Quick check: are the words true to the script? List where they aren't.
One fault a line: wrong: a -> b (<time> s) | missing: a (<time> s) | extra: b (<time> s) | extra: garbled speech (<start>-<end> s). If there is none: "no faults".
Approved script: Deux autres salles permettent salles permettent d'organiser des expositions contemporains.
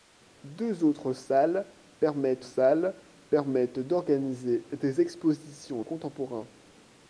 no faults